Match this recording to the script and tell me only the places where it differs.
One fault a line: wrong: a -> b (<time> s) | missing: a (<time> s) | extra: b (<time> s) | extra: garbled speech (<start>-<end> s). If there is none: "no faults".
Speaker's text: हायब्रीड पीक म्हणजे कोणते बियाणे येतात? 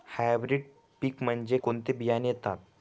no faults